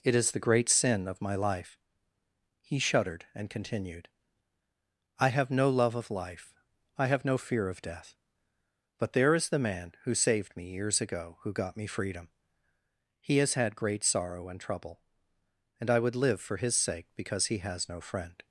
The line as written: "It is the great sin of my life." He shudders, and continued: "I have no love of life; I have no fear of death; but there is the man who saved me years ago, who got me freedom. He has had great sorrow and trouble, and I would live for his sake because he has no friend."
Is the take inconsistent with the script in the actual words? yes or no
yes